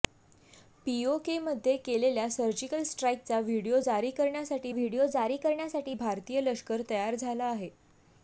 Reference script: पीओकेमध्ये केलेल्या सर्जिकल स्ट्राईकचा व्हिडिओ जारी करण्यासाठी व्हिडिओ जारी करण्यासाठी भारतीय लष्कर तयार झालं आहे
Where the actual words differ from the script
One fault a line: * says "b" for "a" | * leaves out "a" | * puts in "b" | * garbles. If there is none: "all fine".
all fine